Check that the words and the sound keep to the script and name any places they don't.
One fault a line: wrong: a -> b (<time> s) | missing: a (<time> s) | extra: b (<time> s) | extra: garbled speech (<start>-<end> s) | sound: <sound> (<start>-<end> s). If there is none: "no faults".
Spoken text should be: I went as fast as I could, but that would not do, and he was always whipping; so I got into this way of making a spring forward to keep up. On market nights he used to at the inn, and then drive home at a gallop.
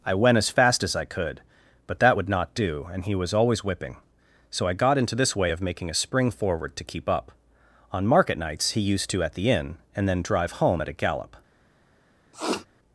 sound: sniff (12.3-12.7 s)